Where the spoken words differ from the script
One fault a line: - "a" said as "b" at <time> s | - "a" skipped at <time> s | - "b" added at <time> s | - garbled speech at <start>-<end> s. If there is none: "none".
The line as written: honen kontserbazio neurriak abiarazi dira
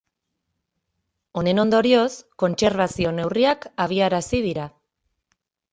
- "ondorioz" added at 1.6 s